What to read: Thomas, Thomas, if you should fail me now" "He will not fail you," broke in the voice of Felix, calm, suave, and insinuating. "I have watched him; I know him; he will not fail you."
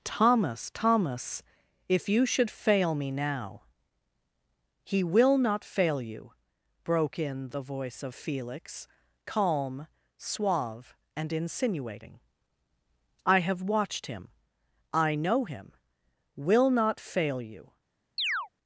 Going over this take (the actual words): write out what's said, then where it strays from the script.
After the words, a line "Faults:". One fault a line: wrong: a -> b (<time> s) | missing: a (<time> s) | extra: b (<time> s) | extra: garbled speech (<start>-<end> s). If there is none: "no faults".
Thomas, Thomas, if you should fail me now" "He will not fail you," broke in the voice of Felix, calm, suave, and insinuating. "I have watched him; I know him; will not fail you."
Faults:
missing: he (15.7 s)